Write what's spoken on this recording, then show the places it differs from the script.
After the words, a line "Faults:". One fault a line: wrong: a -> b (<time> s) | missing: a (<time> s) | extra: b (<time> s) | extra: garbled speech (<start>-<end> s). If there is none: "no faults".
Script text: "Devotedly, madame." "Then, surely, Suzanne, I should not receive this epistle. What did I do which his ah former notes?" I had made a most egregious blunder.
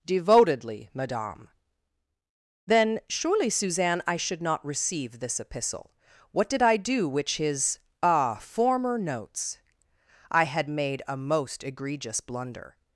"Devotedly, madame." "Then, surely, Suzanne, I should not receive this epistle. What did I do which his ah former notes?" I had made a most egregious blunder.
Faults:
no faults